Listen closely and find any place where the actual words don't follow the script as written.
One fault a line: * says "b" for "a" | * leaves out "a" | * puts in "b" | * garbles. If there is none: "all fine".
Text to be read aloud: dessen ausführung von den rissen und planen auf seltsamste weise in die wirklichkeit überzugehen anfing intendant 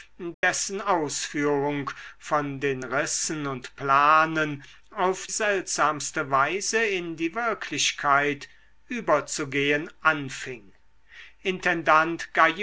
all fine